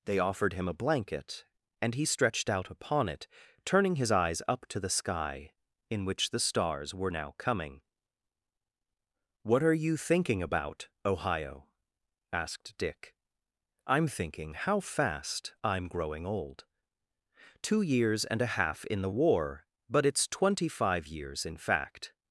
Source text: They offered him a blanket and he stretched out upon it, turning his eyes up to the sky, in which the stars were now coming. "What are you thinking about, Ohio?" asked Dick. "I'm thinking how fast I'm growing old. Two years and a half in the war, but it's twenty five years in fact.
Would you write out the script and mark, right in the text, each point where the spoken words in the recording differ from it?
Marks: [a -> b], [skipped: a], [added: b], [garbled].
They offered him a blanket and he stretched out upon it, turning his eyes up to the sky, in which the stars were now coming. "What are you thinking about, Ohio?" asked Dick. "I'm thinking how fast I'm growing old. Two years and a half in the war, but it's twenty five years in fact.